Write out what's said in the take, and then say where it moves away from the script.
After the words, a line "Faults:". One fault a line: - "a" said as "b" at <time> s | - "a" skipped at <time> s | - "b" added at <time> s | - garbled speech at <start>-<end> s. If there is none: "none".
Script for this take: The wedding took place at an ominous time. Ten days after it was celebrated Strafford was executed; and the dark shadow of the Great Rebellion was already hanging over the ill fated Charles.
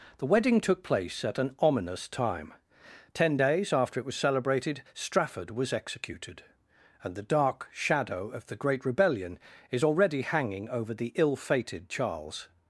The wedding took place at an ominous time. Ten days after it was celebrated Strafford was executed; and the dark shadow of the Great Rebellion is already hanging over the ill fated Charles.
Faults:
- "was" said as "is" at 9.7 s